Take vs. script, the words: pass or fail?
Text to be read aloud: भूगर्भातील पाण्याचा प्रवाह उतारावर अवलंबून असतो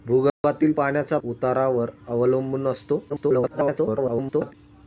fail